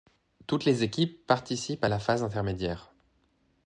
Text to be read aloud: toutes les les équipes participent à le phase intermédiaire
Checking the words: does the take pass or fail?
fail